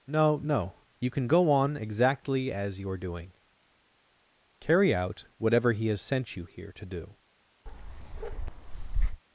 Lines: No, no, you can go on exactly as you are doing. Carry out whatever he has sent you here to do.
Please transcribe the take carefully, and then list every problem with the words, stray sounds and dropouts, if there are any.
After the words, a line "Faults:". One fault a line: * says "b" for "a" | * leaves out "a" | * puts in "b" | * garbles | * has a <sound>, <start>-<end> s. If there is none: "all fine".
No, no, you can go on exactly as you are doing. Carry out whatever he has sent you here to do.
Faults:
* has a bark, 7.7-9.2 s